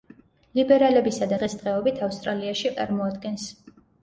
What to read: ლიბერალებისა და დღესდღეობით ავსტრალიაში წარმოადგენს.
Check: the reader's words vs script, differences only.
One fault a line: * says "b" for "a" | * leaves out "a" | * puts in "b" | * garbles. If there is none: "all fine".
all fine